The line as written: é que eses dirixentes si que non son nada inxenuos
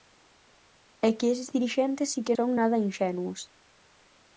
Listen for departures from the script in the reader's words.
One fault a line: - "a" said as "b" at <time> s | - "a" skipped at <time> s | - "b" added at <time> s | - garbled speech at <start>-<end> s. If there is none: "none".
- "non" skipped at 2.4 s